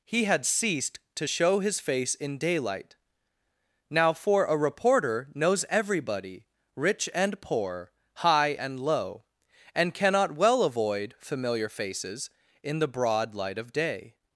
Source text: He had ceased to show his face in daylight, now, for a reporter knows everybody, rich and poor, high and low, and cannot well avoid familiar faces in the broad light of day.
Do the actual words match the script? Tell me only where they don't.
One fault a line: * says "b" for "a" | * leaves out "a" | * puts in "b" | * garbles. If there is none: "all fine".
all fine